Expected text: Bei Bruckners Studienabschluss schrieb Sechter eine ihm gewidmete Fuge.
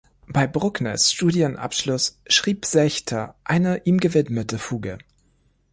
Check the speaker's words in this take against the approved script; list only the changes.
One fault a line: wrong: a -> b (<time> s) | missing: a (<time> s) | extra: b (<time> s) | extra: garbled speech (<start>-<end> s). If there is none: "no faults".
no faults